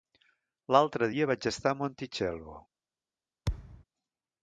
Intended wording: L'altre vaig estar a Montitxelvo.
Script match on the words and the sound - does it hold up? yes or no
no